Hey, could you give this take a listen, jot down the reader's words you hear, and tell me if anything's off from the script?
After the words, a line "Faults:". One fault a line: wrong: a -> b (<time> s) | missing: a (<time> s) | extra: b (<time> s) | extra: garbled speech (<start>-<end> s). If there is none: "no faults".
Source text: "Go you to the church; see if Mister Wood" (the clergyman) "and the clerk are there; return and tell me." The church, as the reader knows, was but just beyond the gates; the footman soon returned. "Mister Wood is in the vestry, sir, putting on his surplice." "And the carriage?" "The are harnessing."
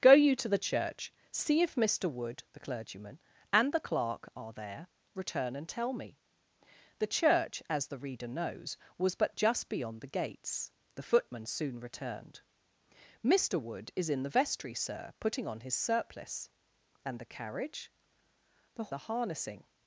"Go you to the church; see if Mister Wood" (the clergyman) "and the clerk are there; return and tell me." The church, as the reader knows, was but just beyond the gates; the footman soon returned. "Mister Wood is in the vestry, sir, putting on his surplice." "And the carriage?" "The are harnessing."
Faults:
no faults